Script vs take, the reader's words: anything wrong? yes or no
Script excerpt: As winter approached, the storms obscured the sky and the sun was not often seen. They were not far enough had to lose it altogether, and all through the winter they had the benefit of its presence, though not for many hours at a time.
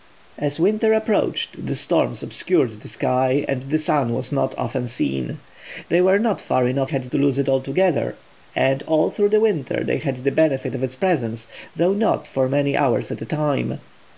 no